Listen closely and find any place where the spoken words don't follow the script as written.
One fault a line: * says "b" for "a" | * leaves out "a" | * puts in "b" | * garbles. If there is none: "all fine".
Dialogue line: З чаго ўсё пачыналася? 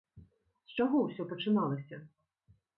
all fine